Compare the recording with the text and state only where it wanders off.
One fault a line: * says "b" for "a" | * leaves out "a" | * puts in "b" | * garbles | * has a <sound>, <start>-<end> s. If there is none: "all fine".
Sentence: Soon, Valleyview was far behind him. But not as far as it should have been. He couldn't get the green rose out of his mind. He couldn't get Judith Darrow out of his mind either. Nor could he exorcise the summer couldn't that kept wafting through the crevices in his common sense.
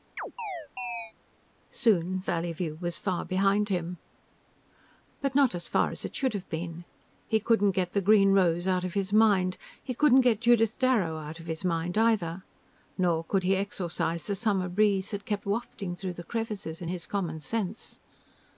* has a chirp, 0.2-1.1 s
* says "breeze" for "couldn't"